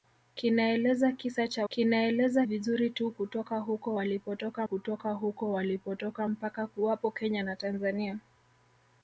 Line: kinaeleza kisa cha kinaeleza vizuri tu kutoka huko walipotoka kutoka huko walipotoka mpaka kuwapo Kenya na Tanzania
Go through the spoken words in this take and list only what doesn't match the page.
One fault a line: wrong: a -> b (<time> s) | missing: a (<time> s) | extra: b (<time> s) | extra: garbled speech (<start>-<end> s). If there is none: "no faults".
no faults